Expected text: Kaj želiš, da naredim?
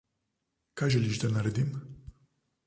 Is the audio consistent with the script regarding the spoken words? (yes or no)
yes